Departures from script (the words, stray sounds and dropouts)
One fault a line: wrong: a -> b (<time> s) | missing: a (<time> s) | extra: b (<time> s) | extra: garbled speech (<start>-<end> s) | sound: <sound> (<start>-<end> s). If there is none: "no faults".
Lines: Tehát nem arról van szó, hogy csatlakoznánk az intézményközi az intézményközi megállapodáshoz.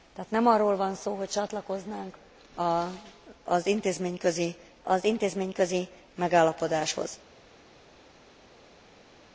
no faults